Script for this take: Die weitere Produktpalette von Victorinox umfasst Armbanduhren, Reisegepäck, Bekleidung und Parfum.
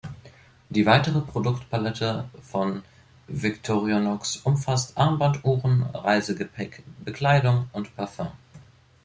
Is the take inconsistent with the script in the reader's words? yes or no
no